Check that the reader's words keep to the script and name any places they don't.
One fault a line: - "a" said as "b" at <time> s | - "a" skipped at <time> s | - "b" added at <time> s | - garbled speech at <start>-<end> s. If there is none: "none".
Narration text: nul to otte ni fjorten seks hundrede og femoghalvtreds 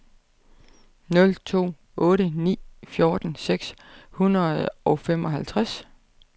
none